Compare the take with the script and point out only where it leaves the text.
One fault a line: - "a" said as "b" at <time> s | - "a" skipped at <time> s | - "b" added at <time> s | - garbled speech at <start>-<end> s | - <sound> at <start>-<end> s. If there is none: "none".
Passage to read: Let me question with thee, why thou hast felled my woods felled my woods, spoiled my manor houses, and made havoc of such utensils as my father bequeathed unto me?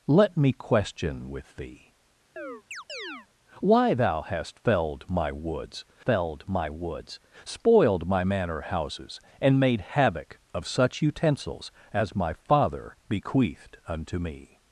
- chirp at 2.4-3.3 s